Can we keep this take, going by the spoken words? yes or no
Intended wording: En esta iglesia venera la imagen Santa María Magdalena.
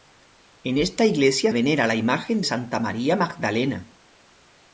yes